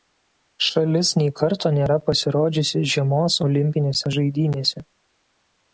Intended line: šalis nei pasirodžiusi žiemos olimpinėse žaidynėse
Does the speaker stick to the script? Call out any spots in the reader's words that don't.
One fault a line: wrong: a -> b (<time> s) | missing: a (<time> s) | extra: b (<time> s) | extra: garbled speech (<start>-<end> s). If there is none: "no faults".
extra: karto nėra (1.4 s)